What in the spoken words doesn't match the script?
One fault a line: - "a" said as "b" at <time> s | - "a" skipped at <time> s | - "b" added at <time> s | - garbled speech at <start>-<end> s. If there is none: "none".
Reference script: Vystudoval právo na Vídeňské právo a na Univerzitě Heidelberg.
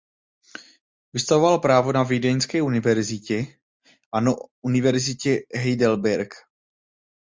- "právo" said as "univerzitě" at 2.6 s